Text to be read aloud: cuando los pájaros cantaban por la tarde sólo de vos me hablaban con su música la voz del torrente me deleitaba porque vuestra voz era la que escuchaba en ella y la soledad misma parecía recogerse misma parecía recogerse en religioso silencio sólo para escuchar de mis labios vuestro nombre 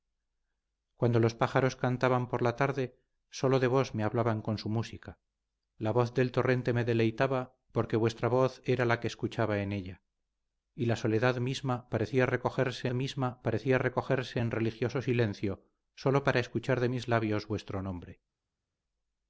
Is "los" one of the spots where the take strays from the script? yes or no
no